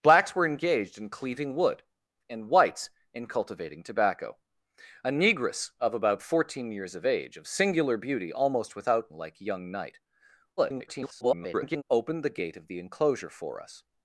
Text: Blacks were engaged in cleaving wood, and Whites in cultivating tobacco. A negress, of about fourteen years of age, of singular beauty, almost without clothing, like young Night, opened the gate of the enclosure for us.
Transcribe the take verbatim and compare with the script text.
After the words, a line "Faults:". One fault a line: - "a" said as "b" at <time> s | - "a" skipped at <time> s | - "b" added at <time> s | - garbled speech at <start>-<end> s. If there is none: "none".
Blacks were engaged in cleaving wood, and Whites in cultivating tobacco. A negress, of about fourteen years of age, of singular beauty, almost without like young Night, [garbled] opened the gate of the enclosure for us.
Faults:
- "clothing" skipped at 9.1 s
- garbled speech at 10.6-11.8 s